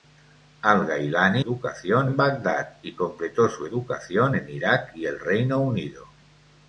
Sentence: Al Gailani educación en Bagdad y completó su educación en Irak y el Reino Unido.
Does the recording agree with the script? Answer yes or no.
yes